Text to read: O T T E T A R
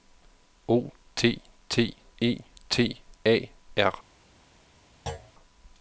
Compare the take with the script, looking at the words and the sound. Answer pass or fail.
fail